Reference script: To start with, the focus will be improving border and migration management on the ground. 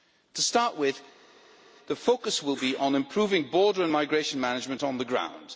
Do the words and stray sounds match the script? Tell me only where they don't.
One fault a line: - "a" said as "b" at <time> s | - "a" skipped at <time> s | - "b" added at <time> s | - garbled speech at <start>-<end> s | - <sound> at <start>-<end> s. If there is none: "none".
- "on" added at 2.7 s